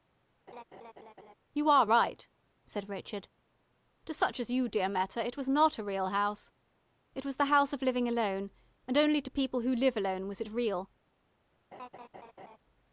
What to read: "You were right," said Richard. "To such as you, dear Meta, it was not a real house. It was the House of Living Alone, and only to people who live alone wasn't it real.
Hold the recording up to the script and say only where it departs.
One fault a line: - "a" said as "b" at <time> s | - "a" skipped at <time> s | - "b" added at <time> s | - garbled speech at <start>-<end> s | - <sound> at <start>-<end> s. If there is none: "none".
- laugh at 0.5-1.3 s
- "were" said as "are" at 1.7 s
- "wasn't" said as "was" at 10.3 s
- laugh at 11.7-12.6 s